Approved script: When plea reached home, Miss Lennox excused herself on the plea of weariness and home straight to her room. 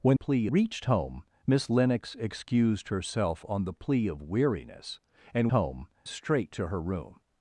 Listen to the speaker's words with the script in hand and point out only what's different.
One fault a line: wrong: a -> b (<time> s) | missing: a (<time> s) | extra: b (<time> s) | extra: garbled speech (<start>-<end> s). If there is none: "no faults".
no faults